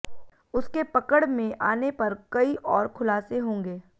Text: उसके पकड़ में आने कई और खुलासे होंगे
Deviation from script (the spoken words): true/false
true